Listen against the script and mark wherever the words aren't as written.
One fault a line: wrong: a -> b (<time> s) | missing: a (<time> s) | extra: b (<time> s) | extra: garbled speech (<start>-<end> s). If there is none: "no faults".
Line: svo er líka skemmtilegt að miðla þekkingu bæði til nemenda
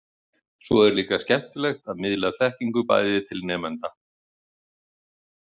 no faults